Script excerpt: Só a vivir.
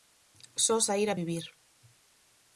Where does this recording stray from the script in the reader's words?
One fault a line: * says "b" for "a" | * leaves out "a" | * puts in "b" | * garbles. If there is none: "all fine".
* puts in "saír"